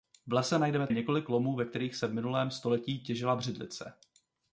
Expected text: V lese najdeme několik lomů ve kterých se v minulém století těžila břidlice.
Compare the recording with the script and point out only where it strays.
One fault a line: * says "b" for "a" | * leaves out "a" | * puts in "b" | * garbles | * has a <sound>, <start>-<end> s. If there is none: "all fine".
all fine